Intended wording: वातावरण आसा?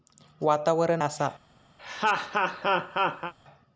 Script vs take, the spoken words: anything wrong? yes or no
no